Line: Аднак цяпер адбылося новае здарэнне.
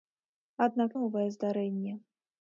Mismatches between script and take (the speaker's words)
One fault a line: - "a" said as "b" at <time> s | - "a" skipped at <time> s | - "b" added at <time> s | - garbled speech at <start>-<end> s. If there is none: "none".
- "цяпер адбылося" skipped at 0.9 s